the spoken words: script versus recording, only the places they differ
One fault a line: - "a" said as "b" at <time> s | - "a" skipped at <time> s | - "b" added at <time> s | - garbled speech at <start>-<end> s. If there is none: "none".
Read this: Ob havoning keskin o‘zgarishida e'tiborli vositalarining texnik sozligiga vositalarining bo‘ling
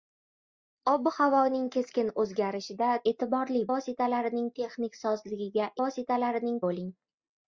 none